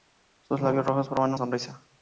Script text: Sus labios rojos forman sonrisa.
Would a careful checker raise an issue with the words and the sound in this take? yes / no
no